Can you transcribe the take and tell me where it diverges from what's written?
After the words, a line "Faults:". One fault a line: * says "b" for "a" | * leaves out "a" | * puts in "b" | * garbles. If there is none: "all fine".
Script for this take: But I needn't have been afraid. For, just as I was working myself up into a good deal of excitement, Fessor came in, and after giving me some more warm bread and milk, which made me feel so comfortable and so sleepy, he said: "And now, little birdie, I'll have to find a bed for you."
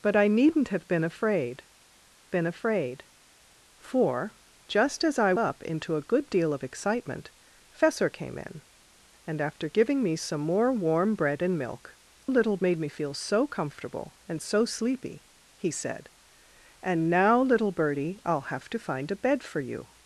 But I needn't have been afraid been afraid. For, just as I up into a good deal of excitement, Fessor came in, and after giving me some more warm bread and milk, little made me feel so comfortable and so sleepy, he said: "And now, little birdie, I'll have to find a bed for you."
Faults:
* puts in "been afraid"
* leaves out "was working myself"
* says "little" for "which"